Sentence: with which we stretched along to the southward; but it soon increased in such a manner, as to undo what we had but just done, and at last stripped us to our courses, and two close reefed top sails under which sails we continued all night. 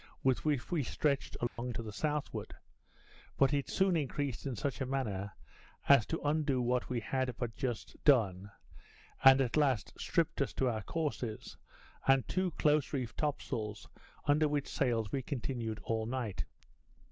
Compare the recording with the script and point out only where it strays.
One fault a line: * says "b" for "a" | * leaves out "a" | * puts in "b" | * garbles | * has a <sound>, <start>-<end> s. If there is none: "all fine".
* has a dropout, 1.5-1.6 s